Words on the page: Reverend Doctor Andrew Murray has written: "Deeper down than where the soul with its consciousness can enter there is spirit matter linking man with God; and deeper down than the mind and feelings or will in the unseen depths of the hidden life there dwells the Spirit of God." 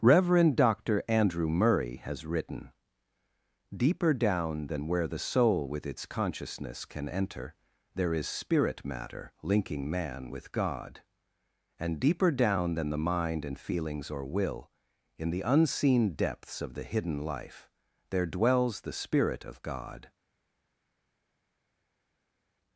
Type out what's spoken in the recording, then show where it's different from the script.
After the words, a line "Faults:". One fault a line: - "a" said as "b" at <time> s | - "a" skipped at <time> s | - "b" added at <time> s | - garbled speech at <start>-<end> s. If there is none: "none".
Reverend Doctor Andrew Murray has written: "Deeper down than where the soul with its consciousness can enter there is spirit matter linking man with God; and deeper down than the mind and feelings or will in the unseen depths of the hidden life there dwells the Spirit of God."
Faults:
none